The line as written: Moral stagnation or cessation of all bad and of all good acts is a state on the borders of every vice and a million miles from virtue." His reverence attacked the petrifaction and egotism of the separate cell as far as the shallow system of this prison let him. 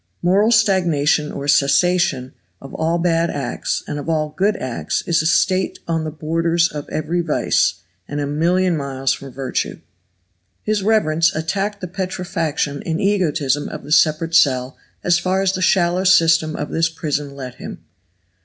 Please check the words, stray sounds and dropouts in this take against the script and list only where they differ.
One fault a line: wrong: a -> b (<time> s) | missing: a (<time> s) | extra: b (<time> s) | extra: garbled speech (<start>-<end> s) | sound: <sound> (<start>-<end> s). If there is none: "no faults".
extra: acts (3.3 s)